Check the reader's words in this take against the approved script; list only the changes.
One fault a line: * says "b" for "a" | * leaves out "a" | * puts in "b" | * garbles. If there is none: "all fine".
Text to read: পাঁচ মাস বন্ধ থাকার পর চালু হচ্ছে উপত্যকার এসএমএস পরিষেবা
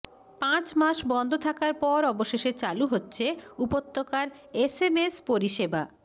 * puts in "অবশেষে"